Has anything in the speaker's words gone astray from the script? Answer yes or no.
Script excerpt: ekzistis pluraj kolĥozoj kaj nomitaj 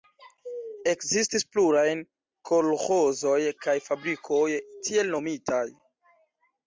yes